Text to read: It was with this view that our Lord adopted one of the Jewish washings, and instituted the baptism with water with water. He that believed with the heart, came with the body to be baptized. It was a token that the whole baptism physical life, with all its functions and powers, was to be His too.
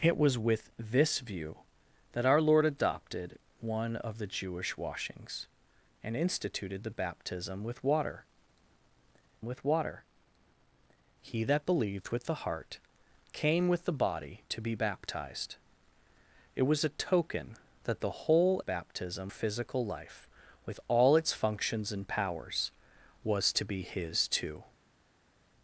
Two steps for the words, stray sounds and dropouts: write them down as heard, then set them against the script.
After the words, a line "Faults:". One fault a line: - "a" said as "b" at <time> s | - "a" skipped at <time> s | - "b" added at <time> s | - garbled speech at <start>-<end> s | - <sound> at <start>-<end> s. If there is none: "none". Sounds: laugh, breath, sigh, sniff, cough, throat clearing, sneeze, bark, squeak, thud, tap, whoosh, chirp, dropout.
It was with this view that our Lord adopted one of the Jewish washings, and instituted the baptism with water with water. He that believed with the heart, came with the body to be baptized. It was a token that the whole baptism physical life, with all its functions and powers, was to be His too.
Faults:
none